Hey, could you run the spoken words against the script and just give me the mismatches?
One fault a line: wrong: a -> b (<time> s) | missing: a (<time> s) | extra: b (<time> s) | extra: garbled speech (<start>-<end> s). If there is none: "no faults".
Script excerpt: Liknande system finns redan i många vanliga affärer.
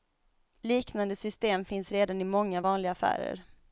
no faults